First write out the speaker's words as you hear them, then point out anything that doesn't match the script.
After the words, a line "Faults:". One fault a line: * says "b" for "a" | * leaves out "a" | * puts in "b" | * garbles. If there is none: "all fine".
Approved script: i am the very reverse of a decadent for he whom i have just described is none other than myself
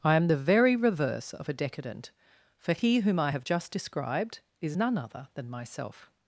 i am the very reverse of a decadent for he whom i have just described is none other than myself
Faults:
all fine